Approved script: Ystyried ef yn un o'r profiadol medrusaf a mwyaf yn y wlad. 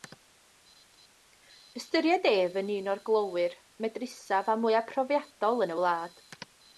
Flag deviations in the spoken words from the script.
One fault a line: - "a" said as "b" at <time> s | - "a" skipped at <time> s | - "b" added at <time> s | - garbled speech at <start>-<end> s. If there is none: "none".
- "profiadol" said as "glowyr" at 3.1 s
- "profiadol" added at 4.9 s